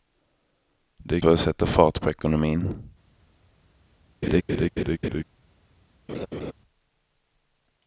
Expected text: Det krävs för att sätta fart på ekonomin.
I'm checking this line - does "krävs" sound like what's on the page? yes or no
no